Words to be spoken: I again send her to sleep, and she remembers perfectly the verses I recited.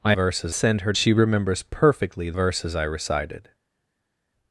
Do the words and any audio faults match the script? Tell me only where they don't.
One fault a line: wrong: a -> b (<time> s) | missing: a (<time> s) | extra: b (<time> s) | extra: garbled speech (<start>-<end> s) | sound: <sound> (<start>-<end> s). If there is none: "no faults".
wrong: again -> verses (0.1 s)
missing: to sleep and (0.9 s)
missing: the (2.3 s)